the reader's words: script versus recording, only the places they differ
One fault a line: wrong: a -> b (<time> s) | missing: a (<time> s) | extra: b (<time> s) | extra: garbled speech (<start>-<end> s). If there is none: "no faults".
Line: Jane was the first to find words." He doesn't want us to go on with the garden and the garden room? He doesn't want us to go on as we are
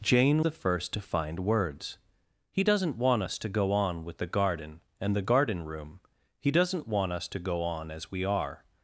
missing: was (0.5 s)